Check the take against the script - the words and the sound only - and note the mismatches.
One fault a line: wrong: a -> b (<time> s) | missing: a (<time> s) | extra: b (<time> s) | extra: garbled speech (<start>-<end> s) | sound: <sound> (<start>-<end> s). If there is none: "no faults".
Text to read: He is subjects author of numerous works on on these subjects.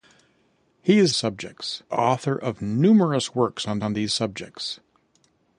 no faults